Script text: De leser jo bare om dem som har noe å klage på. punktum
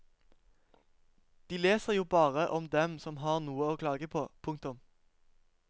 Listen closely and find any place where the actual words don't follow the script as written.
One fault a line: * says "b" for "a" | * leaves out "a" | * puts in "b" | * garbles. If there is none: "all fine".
all fine